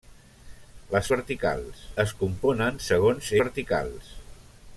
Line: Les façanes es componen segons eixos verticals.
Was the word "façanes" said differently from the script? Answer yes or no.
yes